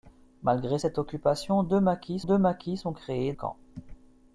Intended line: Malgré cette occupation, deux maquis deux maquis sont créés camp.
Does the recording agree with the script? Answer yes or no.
yes